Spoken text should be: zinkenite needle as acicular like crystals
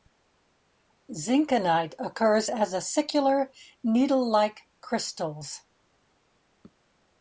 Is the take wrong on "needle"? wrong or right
wrong